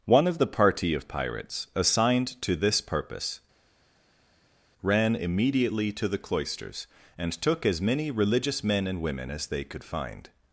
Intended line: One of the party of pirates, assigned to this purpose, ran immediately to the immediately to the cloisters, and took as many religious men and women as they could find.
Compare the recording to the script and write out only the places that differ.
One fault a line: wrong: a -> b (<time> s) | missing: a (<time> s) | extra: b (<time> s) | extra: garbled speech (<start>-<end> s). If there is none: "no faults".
missing: immediately to the (6.2 s)